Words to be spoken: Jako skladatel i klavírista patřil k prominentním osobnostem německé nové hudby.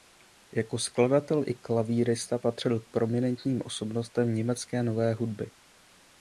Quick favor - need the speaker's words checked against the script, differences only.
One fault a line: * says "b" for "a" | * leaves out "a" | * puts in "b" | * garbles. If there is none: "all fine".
all fine